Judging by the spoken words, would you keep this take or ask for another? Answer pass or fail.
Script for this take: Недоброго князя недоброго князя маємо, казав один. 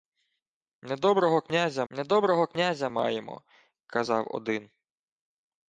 pass